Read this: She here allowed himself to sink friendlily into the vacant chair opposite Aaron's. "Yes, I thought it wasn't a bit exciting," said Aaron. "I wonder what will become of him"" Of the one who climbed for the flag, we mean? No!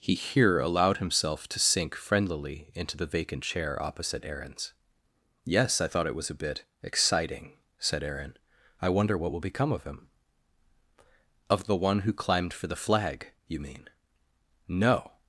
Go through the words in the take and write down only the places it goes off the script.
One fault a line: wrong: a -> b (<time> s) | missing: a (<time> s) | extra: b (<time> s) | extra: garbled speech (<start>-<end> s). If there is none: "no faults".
wrong: She -> He (0.0 s)
wrong: wasn't -> was (6.2 s)
wrong: we -> you (13.5 s)